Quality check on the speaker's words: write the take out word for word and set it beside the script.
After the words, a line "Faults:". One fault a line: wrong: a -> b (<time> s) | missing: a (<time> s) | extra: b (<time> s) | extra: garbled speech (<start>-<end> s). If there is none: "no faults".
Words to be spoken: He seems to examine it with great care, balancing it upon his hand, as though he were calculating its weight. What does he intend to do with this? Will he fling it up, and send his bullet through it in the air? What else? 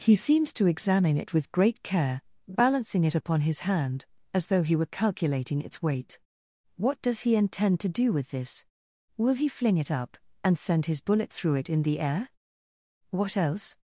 He seems to examine it with great care, balancing it upon his hand, as though he were calculating its weight. What does he intend to do with this? Will he fling it up, and send his bullet through it in the air? What else?
Faults:
no faults